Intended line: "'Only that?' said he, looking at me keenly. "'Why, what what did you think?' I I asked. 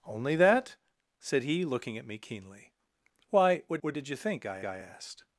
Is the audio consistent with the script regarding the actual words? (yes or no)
yes